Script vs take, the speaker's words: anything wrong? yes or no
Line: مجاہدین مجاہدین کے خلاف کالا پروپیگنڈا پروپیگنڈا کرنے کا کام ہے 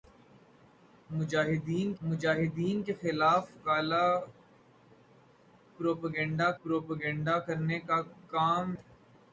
no